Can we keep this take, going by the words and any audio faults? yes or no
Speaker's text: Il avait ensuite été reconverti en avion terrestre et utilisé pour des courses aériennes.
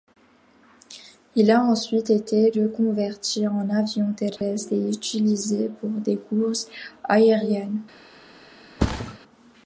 no